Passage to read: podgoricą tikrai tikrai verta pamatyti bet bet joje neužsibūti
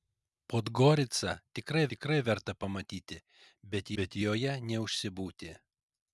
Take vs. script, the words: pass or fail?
pass